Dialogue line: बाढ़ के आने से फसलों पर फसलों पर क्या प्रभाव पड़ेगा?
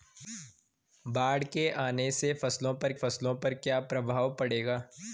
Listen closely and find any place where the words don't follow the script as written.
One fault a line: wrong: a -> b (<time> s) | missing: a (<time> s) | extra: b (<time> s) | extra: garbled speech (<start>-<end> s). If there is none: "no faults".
no faults